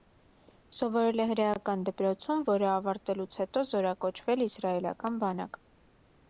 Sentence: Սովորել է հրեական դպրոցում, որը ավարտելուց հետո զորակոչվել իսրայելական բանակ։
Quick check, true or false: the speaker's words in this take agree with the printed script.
true